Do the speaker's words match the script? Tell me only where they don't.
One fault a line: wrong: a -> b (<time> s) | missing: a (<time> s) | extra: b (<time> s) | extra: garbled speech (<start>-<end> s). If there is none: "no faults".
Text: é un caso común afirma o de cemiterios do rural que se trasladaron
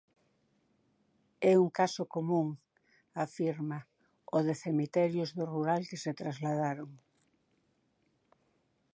no faults